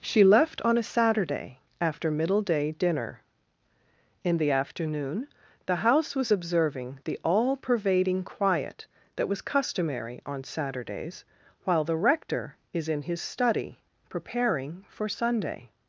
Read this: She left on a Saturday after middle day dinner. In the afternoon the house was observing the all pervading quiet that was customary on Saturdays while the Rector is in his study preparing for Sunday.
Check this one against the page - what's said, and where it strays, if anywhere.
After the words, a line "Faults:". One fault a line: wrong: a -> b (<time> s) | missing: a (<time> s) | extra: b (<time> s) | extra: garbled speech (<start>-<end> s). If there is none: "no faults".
She left on a Saturday after middle day dinner. In the afternoon the house was observing the all pervading quiet that was customary on Saturdays while the Rector is in his study preparing for Sunday.
Faults:
no faults